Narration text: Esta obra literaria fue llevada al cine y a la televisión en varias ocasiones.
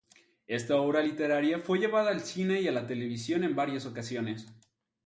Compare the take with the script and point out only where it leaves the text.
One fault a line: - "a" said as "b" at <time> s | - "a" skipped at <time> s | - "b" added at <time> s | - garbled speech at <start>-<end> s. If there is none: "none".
none